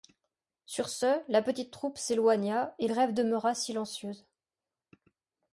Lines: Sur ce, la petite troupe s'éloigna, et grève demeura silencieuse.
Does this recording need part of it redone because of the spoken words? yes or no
no